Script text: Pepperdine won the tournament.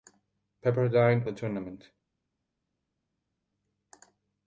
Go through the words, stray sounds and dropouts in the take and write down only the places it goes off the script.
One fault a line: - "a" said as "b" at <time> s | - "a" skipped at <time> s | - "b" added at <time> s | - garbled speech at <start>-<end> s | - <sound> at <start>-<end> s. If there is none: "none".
- "won" skipped at 1.3 s